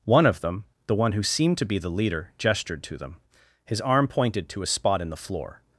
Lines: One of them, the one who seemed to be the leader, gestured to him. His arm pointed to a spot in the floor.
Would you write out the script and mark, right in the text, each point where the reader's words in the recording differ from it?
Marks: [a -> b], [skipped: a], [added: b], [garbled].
One of them, the one who seemed to be the leader, gestured to [him. -> them] His arm pointed to a spot in the floor.